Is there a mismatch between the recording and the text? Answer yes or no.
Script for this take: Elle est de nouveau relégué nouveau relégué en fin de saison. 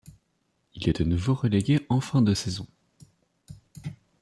yes